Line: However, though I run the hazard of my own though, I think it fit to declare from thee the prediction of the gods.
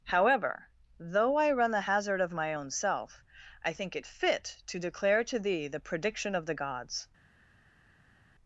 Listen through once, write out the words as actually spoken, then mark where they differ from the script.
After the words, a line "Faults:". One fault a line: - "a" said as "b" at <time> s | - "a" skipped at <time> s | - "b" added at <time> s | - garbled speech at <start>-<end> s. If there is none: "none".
However, though I run the hazard of my own self, I think it fit to declare to thee the prediction of the gods.
Faults:
- "though" said as "self" at 2.7 s
- "from" said as "to" at 5.2 s